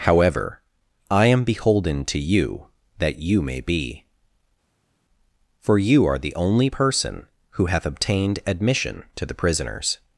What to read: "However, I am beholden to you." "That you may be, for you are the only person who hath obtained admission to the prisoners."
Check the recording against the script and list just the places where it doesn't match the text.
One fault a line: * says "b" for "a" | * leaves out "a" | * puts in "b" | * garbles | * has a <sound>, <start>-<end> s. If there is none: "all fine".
all fine